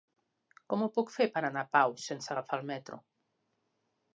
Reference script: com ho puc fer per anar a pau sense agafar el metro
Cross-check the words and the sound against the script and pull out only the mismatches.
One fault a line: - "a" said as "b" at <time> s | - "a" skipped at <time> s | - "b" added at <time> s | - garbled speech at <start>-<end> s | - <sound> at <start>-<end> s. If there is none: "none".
none